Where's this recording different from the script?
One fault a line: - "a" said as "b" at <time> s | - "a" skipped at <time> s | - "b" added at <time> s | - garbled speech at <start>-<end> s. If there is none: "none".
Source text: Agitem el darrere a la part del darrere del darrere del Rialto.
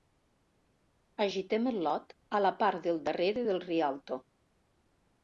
- "darrere" said as "lot" at 1.9 s
- "darrere del" skipped at 3.6 s